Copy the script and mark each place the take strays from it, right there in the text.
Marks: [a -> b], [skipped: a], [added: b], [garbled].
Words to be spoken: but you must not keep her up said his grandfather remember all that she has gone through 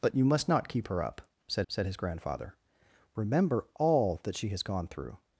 but you must not keep her up said [added: said] his grandfather remember all that she has gone through